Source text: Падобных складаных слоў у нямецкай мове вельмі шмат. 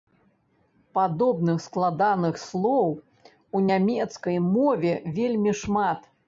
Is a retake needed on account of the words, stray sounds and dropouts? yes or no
no